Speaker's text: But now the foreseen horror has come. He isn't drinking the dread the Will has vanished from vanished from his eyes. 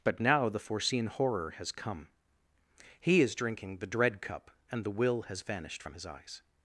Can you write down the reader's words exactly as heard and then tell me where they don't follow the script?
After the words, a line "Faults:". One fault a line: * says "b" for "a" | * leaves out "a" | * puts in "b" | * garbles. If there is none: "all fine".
But now the foreseen horror has come. He is drinking the dread cup, and the Will has vanished from his eyes.
Faults:
* says "is" for "isn't"
* puts in "cup and"
* leaves out "vanished from"